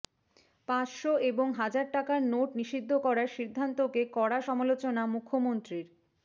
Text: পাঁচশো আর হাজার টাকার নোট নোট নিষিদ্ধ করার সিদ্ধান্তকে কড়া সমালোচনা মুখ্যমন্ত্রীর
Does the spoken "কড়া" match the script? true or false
true